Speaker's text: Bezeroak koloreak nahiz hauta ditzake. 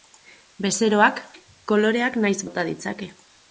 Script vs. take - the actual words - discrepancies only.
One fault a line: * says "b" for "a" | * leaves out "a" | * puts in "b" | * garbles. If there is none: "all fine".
all fine